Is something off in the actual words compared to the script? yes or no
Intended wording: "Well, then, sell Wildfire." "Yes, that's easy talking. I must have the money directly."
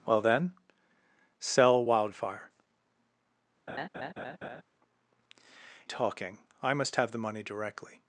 yes